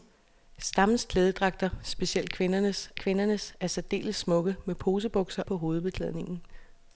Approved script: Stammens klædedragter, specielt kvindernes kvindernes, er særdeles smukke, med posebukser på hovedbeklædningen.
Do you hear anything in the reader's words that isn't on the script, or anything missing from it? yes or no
no